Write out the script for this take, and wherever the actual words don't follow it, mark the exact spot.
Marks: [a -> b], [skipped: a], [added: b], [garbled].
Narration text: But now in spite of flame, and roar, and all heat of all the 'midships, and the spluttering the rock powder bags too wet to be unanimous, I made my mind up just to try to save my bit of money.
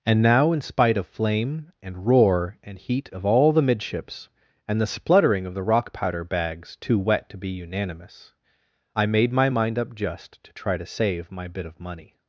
[But -> And] now in spite of flame, and roar, and [skipped: all] heat of all the 'midships, and the spluttering [added: of] the rock powder bags too wet to be unanimous, I made my mind up just to try to save my bit of money.